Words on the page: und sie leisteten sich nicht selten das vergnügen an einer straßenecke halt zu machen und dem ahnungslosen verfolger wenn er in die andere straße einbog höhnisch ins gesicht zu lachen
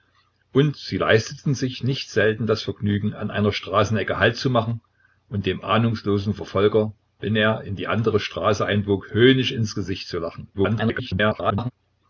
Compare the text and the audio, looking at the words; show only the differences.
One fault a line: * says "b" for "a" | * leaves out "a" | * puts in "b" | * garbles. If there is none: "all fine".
* garbles